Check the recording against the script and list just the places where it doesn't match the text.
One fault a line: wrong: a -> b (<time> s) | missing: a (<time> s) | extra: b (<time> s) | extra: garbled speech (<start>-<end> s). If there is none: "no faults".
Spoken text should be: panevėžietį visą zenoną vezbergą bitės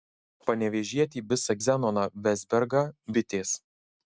no faults